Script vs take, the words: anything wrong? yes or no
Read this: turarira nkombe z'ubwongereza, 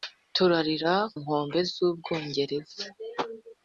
no